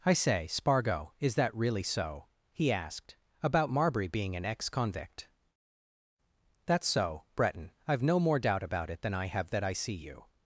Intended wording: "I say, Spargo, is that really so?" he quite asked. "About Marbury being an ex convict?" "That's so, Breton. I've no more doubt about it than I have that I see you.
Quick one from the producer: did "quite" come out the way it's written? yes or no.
no